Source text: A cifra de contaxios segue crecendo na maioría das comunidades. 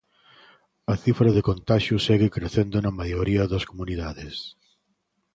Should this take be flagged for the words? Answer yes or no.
no